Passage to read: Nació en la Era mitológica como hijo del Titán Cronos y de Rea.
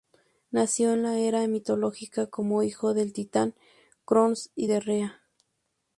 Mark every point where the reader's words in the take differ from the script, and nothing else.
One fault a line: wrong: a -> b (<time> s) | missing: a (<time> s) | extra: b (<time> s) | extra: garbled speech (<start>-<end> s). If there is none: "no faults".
no faults